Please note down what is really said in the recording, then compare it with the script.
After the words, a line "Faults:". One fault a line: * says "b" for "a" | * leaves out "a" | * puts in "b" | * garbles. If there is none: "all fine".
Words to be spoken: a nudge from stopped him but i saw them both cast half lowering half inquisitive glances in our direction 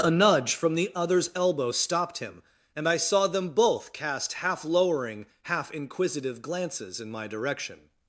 a nudge from the other's elbow stopped him and i saw them both cast half lowering half inquisitive glances in my direction
Faults:
* puts in "the other's elbow"
* says "and" for "but"
* says "my" for "our"